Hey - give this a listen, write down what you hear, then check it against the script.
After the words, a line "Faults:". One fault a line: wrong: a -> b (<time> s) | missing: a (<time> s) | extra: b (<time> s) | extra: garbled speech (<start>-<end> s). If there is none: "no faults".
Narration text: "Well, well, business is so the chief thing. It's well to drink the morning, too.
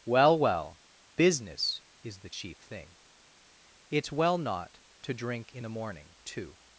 "Well, well, business is the chief thing. It's well not to drink in the morning, too.
Faults:
missing: so (2.2 s)
extra: not (4.4 s)
extra: in (5.5 s)